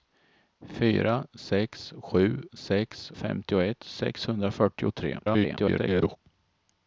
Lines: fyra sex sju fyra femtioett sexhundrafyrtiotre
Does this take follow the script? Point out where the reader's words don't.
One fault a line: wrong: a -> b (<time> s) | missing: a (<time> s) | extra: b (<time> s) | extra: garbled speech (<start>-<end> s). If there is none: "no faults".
wrong: fyra -> sex (2.5 s)
extra: garbled speech (5.2-6.2 s)